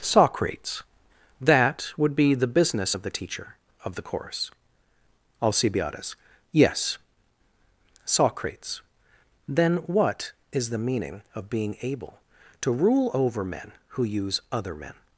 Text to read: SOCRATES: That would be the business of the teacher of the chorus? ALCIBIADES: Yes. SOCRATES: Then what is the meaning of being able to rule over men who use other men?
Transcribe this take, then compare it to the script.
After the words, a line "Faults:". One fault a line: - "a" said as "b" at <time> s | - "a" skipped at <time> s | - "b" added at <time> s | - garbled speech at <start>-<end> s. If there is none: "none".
SOCRATES: That would be the business of the teacher of the course? ALCIBIADES: Yes. SOCRATES: Then what is the meaning of being able to rule over men who use other men?
Faults:
- "chorus" said as "course" at 4.0 s